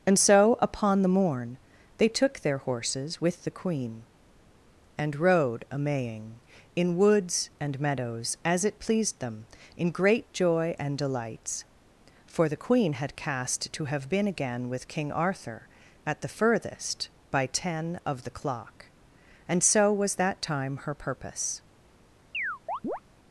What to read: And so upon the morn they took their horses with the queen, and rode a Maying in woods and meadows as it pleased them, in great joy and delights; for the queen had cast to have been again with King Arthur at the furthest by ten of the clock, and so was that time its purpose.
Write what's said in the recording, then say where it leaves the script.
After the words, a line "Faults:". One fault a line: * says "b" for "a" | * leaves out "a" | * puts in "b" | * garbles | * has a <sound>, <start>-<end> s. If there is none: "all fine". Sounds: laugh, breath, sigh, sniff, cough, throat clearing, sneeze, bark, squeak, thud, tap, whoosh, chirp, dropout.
And so upon the morn they took their horses with the queen, and rode a Maying in woods and meadows as it pleased them, in great joy and delights; for the queen had cast to have been again with King Arthur at the furthest by ten of the clock, and so was that time her purpose.
Faults:
* says "her" for "its"
* has a chirp, 22.3-23.0 s